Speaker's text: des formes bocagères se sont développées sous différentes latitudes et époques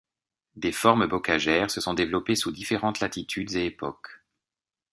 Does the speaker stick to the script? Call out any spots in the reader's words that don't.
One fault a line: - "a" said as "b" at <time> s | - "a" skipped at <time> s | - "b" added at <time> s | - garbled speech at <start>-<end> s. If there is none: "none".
none